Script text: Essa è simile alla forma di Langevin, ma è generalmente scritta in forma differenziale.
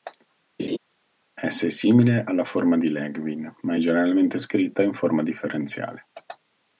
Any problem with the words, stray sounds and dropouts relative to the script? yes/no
yes